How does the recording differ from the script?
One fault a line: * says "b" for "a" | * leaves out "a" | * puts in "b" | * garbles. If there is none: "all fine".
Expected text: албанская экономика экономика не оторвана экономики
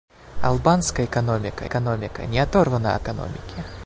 all fine